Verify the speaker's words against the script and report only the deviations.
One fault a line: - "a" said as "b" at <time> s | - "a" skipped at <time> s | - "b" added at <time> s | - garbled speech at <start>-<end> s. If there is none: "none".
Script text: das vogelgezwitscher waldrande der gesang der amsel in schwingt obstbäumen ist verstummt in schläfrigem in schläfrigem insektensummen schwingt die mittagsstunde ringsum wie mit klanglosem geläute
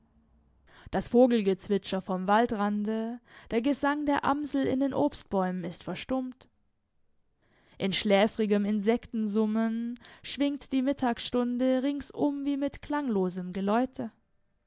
- "vom" added at 2.0 s
- "schwingt" said as "den" at 4.8 s
- "in schläfrigem" skipped at 8.6 s